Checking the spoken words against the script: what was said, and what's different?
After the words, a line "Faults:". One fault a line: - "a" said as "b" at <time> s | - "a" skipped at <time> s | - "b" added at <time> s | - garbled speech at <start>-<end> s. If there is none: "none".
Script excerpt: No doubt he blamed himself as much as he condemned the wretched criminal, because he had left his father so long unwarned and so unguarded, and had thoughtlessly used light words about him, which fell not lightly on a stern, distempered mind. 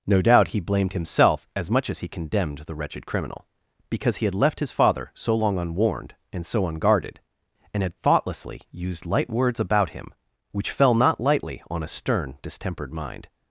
No doubt he blamed himself as much as he condemned the wretched criminal, because he had left his father so long unwarned and so unguarded, and had thoughtlessly used light words about him, which fell not lightly on a stern, distempered mind.
Faults:
none